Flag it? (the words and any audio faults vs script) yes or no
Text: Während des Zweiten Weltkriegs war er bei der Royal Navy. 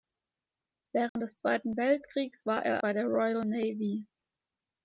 yes